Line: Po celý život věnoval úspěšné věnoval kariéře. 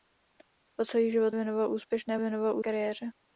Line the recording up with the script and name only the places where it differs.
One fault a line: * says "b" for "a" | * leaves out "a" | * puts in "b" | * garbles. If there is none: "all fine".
all fine